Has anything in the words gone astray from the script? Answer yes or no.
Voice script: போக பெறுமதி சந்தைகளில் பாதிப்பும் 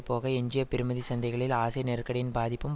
yes